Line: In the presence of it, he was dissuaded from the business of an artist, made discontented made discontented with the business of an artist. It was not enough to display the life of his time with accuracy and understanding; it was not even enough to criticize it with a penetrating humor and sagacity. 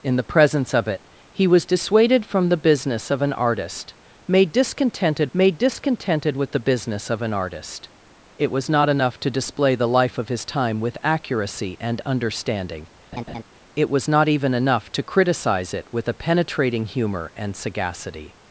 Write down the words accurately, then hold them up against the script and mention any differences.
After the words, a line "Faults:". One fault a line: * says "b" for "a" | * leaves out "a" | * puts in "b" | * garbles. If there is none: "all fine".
In the presence of it, he was dissuaded from the business of an artist, made discontented made discontented with the business of an artist. It was not enough to display the life of his time with accuracy and understanding; it was not even enough to criticize it with a penetrating humor and sagacity.
Faults:
all fine